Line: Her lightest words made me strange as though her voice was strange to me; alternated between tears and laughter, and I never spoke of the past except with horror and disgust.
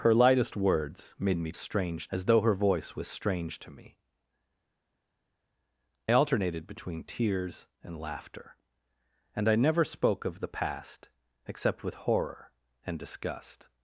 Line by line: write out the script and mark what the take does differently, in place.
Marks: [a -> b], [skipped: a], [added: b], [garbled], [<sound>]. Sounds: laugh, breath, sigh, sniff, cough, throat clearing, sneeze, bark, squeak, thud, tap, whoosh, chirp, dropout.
Her lightest words made me strange as though her voice was strange to me; alternated between tears and laughter, and I never spoke of the past except with horror and disgust.